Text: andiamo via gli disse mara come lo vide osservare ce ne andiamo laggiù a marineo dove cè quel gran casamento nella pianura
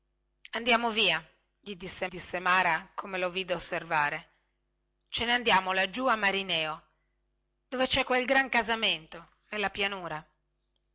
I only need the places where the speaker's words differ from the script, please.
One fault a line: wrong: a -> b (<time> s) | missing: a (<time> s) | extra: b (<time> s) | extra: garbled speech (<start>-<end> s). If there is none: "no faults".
extra: disse (2.1 s)